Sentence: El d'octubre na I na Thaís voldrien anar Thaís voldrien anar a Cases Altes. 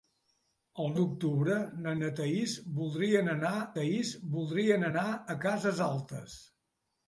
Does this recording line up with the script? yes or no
yes